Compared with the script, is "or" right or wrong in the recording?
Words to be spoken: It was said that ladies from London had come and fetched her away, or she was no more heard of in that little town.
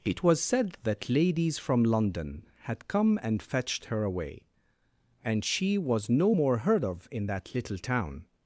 wrong